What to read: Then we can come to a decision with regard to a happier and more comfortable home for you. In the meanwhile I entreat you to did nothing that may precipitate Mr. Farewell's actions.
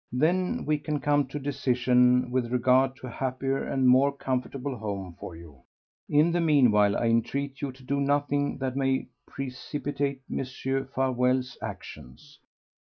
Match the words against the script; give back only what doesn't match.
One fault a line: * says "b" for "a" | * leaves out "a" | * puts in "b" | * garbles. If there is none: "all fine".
* says "do" for "did"